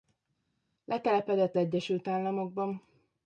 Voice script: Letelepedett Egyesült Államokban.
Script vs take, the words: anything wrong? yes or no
no